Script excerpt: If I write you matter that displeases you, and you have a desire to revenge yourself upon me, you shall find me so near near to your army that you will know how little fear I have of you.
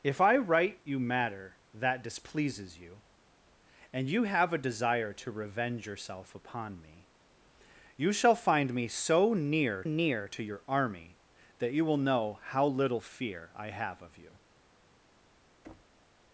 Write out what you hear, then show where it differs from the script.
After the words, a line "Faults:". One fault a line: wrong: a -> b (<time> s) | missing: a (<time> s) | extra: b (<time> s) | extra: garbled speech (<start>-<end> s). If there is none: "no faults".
If I write you matter that displeases you, and you have a desire to revenge yourself upon me, you shall find me so near near to your army that you will know how little fear I have of you.
Faults:
no faults